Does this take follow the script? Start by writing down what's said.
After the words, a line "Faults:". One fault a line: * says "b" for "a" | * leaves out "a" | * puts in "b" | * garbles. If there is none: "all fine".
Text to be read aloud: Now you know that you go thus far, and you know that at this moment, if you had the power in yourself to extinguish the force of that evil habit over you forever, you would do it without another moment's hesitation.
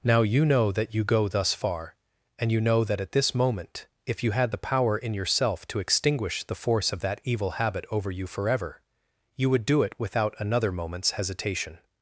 Now you know that you go thus far, and you know that at this moment, if you had the power in yourself to extinguish the force of that evil habit over you forever, you would do it without another moment's hesitation.
Faults:
all fine